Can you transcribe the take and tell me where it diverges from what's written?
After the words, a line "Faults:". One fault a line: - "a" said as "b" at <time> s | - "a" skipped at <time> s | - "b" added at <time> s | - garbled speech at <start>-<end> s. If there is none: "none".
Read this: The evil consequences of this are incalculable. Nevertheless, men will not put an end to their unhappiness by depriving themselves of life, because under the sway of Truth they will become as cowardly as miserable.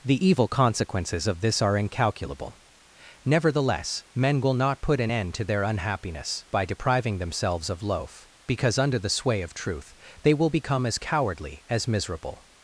The evil consequences of this are incalculable. Nevertheless, men will not put an end to their unhappiness by depriving themselves of loaf, because under the sway of Truth they will become as cowardly as miserable.
Faults:
- "life" said as "loaf" at 7.8 s